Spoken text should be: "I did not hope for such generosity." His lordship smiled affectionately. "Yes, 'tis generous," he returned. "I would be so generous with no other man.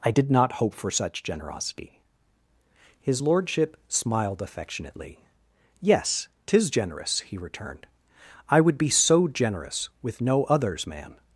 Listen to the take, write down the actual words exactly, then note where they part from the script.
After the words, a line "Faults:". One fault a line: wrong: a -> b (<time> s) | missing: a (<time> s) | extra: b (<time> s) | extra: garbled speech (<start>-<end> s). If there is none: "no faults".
"I did not hope for such generosity." His lordship smiled affectionately. "Yes, 'tis generous," he returned. "I would be so generous with no others man.
Faults:
wrong: other -> others (10.4 s)